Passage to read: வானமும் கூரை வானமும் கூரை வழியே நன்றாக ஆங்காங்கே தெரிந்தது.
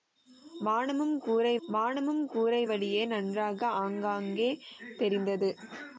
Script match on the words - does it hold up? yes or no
yes